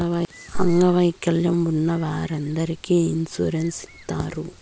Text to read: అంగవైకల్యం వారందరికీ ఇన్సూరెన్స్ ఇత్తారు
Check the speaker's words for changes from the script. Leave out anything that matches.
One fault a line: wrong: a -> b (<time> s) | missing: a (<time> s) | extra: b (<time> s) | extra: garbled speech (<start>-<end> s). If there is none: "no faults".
extra: ఉన్న (1.6 s)